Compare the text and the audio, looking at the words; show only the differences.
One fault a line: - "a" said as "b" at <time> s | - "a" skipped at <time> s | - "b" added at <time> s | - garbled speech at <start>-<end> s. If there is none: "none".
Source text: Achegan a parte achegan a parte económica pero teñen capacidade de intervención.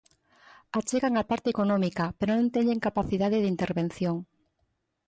- "achegan a parte" skipped at 1.5 s
- "non" added at 2.3 s